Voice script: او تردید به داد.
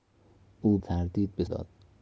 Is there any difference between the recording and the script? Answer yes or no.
no